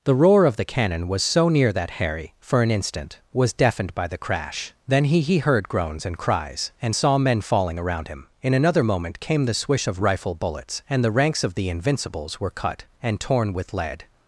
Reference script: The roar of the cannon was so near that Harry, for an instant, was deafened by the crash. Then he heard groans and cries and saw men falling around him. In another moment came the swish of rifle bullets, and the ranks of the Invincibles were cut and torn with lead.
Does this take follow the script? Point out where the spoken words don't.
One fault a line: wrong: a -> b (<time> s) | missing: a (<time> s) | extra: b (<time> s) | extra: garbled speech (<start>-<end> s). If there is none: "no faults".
extra: he (5.2 s)